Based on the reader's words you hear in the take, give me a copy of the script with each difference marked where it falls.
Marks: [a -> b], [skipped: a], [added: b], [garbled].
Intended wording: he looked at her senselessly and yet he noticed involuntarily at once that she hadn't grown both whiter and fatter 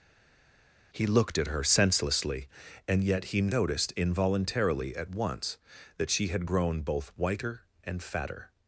he looked at her senselessly and yet he noticed involuntarily at once that she [hadn't -> had] grown both whiter and fatter